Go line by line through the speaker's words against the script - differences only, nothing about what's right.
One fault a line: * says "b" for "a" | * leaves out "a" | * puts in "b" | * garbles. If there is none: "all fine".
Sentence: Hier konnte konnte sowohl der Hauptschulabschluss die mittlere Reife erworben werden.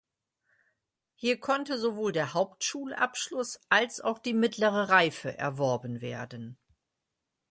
* leaves out "konnte"
* puts in "als auch"